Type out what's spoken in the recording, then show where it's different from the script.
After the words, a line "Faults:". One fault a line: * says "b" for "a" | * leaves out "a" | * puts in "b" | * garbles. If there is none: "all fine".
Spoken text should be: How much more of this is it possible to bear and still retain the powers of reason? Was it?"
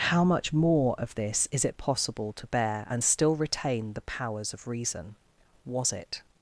How much more of this is it possible to bear and still retain the powers of reason? Was it?"
Faults:
all fine